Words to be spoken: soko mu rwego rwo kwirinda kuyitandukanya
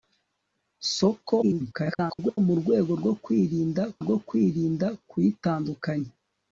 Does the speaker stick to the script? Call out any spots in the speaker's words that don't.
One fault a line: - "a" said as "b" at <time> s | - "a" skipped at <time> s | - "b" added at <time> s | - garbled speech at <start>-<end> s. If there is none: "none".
- garbled speech at 1.4-2.4 s
- "rwo kwirinda" added at 4.0 s